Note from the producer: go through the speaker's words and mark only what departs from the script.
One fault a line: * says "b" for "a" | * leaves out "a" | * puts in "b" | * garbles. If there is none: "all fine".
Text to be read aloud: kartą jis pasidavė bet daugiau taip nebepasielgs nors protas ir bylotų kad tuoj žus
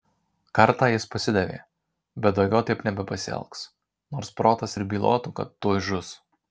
all fine